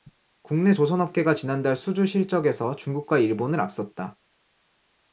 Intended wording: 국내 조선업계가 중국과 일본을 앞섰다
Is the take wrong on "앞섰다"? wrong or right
right